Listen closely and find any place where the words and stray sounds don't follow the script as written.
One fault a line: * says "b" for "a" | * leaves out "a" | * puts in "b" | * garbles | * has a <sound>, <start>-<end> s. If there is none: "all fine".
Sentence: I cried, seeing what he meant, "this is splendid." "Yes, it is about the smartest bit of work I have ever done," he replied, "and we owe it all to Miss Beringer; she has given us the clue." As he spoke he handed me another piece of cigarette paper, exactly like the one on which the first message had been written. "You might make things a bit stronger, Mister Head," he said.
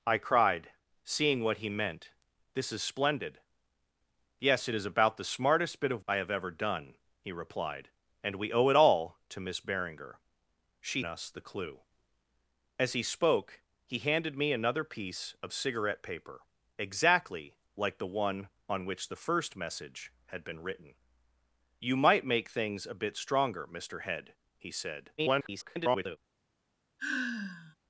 * leaves out "work"
* leaves out "has given"
* garbles
* has a sigh, 27.0-27.8 s